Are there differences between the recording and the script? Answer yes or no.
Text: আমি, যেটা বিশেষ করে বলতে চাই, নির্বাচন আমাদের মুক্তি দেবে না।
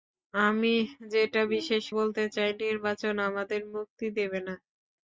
yes